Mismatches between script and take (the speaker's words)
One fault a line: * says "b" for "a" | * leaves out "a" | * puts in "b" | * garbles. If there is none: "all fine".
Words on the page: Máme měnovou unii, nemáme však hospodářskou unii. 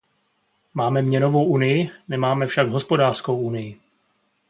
all fine